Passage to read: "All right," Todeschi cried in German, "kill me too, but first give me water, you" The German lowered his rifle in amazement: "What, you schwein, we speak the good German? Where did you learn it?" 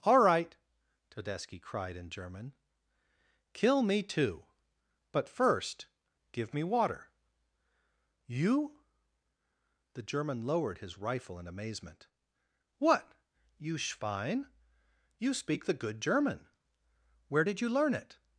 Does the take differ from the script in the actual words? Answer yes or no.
yes